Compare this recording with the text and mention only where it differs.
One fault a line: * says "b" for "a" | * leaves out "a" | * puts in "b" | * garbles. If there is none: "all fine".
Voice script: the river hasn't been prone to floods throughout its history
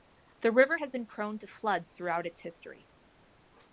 * says "has" for "hasn't"